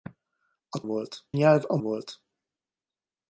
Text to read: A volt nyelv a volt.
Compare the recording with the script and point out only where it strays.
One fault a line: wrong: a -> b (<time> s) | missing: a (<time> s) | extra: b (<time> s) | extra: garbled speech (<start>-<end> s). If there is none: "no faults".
no faults